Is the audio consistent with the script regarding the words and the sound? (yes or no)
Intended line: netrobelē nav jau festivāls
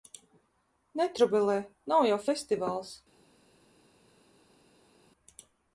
yes